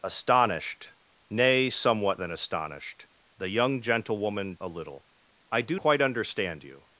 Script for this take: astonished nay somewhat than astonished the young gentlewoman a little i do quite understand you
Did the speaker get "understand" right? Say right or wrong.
right